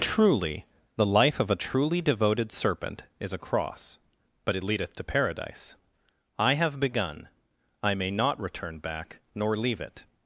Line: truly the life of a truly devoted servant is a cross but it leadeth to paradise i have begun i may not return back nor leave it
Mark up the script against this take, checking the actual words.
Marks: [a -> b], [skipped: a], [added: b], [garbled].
truly the life of a truly devoted [servant -> serpent] is a cross but it leadeth to paradise i have begun i may not return back nor leave it